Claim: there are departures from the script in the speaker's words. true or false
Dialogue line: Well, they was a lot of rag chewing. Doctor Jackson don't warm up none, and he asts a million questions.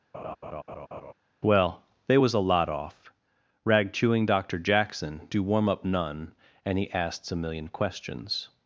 true